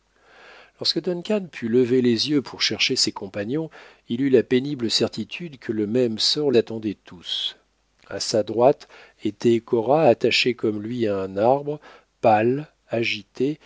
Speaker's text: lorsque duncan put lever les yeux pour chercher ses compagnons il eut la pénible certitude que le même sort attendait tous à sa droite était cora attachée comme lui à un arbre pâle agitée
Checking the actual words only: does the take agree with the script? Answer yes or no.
yes